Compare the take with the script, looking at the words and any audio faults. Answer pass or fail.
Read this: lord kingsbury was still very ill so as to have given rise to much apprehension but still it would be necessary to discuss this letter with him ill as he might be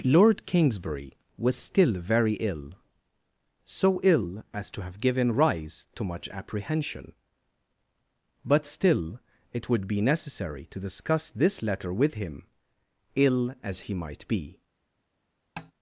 fail